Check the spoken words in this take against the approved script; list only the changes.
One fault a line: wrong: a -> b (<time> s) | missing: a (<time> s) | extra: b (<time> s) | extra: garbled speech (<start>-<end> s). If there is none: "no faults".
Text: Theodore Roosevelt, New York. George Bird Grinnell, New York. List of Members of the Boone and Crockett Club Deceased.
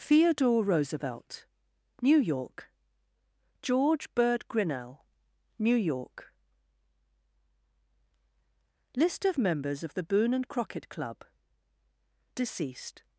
no faults